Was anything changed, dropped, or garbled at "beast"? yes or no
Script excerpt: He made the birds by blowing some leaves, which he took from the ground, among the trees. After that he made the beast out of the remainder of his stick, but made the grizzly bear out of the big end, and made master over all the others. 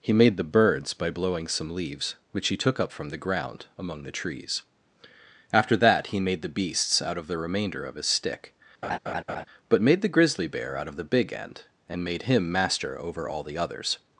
yes